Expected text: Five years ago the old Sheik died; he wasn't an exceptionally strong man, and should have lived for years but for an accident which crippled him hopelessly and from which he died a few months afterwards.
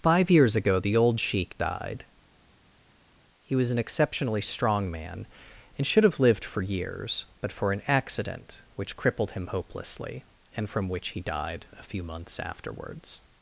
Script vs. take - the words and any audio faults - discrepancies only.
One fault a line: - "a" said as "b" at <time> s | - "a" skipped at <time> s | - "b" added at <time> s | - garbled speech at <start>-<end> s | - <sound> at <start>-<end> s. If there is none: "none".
- "wasn't" said as "was" at 3.6 s